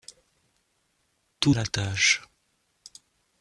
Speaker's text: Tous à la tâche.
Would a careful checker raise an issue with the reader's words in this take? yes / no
no